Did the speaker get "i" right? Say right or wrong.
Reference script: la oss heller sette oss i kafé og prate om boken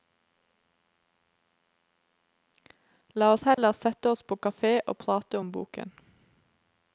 wrong